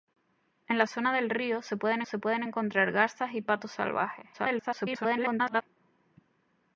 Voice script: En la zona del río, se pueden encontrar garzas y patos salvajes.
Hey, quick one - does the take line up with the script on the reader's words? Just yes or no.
no